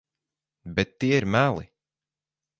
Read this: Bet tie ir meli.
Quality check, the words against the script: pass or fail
pass